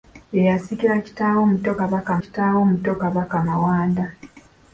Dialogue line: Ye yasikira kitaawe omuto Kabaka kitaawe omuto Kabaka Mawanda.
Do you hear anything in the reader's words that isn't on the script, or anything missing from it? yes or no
no